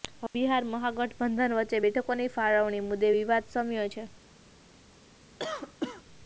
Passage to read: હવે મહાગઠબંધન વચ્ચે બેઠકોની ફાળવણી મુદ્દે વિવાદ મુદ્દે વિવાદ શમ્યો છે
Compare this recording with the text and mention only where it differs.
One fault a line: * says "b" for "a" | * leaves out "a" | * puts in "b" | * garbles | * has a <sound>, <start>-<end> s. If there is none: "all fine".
* puts in "બિહાર"
* leaves out "મુદ્દે વિવાદ"
* has a cough, 5.4-6.0 s